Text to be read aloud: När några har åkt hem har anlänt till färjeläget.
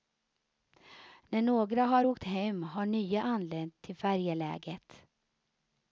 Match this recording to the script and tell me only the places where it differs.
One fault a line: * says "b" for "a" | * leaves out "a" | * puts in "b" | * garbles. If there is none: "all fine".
* puts in "nya"